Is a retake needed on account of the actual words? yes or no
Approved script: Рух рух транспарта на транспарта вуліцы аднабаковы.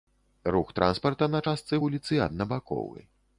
yes